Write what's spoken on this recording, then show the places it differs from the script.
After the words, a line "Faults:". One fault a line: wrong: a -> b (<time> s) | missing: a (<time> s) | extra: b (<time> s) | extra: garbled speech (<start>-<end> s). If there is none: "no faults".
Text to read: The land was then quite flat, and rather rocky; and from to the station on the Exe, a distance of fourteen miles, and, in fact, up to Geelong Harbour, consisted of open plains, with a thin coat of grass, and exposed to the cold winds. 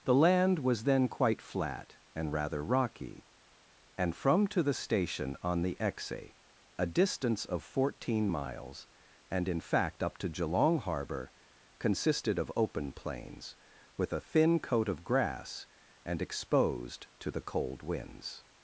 The land was then quite flat, and rather rocky; and from to the station on the Exe, a distance of fourteen miles, and, in fact, up to Geelong Harbour, consisted of open plains, with a thin coat of grass, and exposed to the cold winds.
Faults:
no faults